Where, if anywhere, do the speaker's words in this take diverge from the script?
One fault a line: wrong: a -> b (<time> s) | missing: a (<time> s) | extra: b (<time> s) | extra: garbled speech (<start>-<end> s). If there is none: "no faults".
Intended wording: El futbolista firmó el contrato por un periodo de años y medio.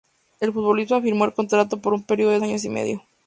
no faults